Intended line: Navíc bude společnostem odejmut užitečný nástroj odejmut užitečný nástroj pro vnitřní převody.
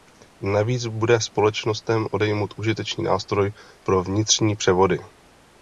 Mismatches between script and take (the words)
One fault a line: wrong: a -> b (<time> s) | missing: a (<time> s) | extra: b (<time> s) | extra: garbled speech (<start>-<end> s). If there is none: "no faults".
missing: odejmut užitečný nástroj (3.5 s)